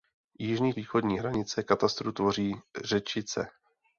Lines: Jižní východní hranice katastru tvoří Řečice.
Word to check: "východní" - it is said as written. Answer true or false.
true